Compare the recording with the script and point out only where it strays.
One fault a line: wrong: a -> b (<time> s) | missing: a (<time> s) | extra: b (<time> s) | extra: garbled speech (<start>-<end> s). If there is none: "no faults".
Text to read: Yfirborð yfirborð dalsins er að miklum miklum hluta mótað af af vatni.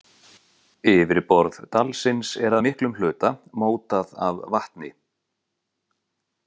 missing: yfirborð (1.6 s)
missing: miklum (3.0 s)
missing: af (4.4 s)